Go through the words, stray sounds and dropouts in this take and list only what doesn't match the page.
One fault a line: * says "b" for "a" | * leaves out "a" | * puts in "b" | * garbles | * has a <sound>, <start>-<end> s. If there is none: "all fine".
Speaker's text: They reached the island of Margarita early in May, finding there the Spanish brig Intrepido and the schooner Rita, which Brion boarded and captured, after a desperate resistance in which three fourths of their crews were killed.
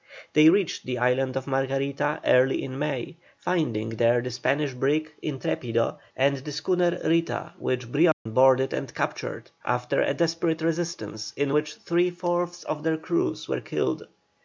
* has a dropout, 8.1-8.3 s